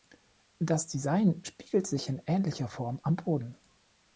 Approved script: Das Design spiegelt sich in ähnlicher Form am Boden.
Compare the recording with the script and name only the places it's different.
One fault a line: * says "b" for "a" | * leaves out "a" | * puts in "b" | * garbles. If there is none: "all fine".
all fine